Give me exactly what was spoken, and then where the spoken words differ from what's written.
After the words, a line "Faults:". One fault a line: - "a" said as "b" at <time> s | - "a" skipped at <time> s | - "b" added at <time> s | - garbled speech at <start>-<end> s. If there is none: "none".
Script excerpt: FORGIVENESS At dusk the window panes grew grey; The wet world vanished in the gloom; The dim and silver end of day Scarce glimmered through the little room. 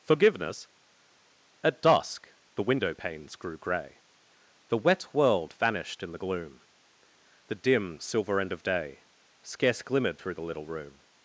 FORGIVENESS At dusk the window panes grew grey; The wet world vanished in the gloom; The dim silver end of day Scarce glimmered through the little room.
Faults:
- "and" skipped at 8.0 s